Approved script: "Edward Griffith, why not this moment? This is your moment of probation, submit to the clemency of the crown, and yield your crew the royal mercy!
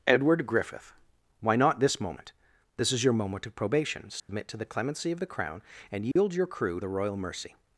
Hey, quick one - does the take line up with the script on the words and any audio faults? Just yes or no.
no